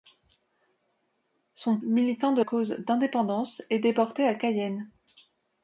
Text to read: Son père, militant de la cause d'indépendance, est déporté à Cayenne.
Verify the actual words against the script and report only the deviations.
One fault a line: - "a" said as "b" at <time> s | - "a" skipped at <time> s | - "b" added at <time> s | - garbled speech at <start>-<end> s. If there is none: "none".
- "père" skipped at 1.8 s
- "la" skipped at 2.4 s